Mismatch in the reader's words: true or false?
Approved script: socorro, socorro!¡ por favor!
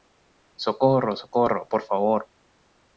false